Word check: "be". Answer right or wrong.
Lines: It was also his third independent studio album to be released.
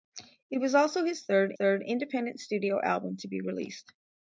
right